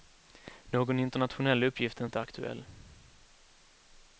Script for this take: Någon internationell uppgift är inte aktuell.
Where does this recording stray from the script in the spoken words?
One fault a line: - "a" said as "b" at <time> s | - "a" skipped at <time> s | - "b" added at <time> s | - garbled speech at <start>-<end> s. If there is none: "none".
none